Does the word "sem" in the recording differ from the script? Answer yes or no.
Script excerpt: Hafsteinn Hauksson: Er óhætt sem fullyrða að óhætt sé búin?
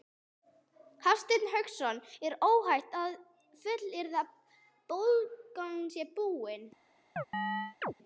yes